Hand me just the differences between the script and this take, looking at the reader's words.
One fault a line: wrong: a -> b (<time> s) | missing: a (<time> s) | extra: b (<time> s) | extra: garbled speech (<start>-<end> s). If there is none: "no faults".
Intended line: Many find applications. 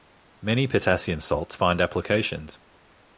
extra: potassium salts (0.7 s)